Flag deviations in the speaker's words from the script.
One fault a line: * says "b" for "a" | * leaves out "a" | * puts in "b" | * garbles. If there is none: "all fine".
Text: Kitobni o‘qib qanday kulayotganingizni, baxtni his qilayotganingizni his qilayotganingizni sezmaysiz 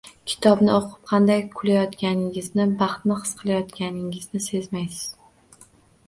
* leaves out "his qilayotganingizni"